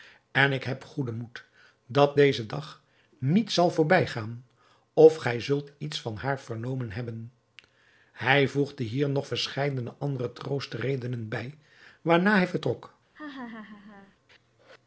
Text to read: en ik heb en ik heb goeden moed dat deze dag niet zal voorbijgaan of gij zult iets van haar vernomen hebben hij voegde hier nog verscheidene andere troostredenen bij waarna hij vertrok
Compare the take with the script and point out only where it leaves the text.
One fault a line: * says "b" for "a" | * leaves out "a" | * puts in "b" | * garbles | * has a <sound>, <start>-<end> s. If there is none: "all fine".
* leaves out "en ik heb"
* has a laugh, 13.1-14.2 s